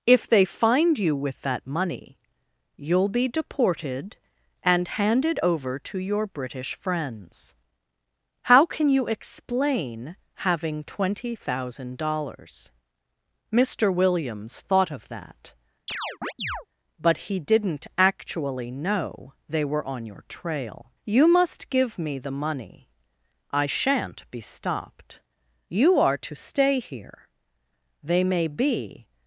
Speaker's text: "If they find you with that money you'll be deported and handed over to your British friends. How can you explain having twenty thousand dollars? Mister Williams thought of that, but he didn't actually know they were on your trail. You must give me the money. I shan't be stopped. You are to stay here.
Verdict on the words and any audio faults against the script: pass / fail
fail